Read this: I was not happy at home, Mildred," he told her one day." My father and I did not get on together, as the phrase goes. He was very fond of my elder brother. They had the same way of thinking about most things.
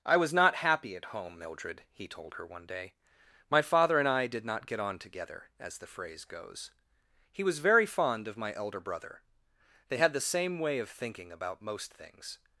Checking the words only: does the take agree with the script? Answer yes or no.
yes